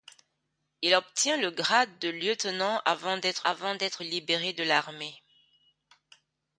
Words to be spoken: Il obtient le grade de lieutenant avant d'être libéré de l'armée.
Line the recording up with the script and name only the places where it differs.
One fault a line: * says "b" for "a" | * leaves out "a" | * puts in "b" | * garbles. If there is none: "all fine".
* puts in "avant d'être"